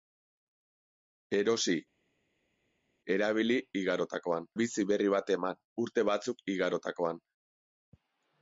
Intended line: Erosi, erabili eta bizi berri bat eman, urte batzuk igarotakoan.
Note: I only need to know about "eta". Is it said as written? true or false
false